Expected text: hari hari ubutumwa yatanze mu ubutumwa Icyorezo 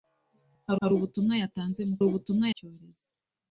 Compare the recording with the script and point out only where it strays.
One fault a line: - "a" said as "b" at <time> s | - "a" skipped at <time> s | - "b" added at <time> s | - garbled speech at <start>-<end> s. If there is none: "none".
none